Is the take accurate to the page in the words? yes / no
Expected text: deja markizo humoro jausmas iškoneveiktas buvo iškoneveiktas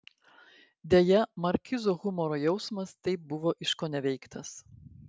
no